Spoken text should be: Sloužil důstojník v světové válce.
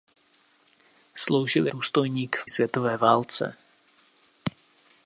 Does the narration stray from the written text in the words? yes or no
no